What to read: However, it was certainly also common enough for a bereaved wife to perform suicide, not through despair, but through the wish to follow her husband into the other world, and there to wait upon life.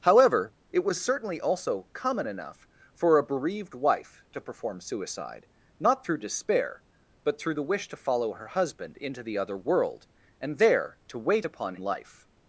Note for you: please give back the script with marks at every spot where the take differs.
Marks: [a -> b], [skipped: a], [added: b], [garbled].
However, it was certainly also common enough for a bereaved wife to perform suicide, not through despair, but through the wish to follow her husband into the other world, and there to wait upon life.